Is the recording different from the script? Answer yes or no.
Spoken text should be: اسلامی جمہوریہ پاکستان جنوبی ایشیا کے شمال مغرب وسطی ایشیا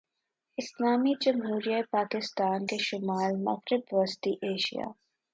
yes